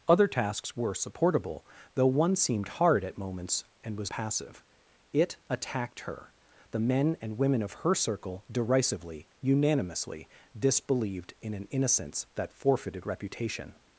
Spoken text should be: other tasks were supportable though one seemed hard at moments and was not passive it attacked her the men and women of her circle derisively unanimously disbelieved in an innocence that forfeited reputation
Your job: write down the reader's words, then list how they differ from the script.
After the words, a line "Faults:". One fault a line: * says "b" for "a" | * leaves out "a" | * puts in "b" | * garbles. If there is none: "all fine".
other tasks were supportable though one seemed hard at moments and was passive it attacked her the men and women of her circle derisively unanimously disbelieved in an innocence that forfeited reputation
Faults:
* leaves out "not"